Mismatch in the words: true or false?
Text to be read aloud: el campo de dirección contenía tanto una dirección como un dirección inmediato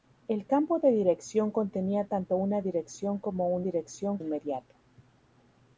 false